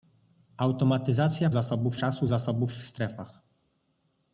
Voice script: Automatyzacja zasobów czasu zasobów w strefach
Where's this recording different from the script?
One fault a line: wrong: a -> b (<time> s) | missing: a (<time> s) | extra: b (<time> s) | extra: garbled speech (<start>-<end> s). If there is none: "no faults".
no faults